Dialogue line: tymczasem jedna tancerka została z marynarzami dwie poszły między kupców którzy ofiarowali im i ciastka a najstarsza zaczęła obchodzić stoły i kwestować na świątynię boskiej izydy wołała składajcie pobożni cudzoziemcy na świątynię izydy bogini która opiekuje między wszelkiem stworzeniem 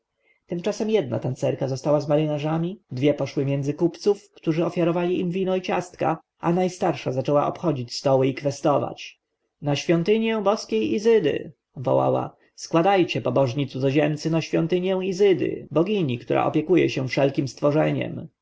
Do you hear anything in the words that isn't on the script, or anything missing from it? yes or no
yes